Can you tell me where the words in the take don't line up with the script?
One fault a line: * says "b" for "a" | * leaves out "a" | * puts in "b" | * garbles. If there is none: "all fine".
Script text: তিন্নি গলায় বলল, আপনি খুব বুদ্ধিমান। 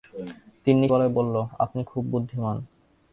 all fine